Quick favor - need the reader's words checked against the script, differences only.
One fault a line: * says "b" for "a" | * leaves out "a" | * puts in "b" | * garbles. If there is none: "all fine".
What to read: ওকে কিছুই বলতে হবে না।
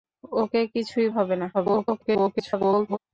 * leaves out "বলতে"
* garbles